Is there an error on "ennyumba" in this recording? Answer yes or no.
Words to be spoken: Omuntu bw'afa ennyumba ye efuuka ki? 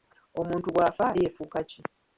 yes